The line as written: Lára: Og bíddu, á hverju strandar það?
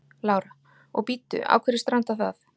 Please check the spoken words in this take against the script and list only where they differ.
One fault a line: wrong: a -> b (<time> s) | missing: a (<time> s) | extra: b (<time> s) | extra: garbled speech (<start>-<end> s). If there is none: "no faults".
no faults